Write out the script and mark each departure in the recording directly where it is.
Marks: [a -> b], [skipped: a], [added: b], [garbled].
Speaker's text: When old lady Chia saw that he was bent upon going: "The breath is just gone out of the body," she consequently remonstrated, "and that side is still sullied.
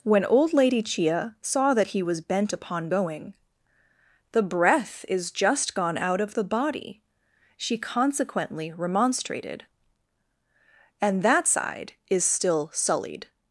When old lady Chia saw that he was bent upon going: "The breath is just gone out of the body," she consequently remonstrated, "and that side is still sullied.